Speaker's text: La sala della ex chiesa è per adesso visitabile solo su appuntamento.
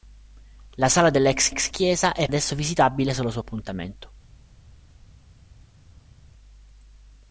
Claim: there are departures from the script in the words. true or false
true